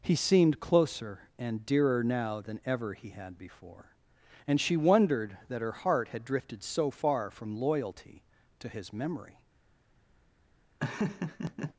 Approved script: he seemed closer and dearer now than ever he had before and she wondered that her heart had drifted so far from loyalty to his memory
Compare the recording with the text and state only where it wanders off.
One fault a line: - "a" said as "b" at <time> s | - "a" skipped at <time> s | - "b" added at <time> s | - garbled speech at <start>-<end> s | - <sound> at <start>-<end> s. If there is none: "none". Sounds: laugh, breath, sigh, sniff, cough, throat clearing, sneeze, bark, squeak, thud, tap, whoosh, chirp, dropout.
- laugh at 10.8-11.7 s